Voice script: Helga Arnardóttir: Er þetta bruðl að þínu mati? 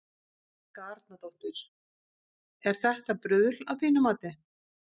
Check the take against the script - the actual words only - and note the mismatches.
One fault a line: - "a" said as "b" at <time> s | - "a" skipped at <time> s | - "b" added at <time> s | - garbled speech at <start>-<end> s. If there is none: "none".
none